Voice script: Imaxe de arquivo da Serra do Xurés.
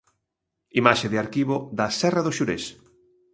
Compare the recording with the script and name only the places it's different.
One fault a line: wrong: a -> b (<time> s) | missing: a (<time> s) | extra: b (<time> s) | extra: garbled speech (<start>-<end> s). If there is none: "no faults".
no faults